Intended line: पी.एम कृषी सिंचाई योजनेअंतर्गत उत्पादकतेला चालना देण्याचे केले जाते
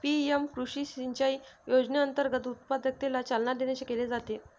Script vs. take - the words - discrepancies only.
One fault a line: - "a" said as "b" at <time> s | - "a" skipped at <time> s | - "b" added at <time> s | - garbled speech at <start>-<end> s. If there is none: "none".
none